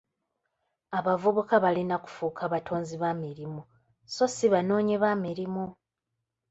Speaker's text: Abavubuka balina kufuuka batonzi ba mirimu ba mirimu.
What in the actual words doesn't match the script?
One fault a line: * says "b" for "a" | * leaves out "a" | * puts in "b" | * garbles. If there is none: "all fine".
* puts in "so si banoonyi"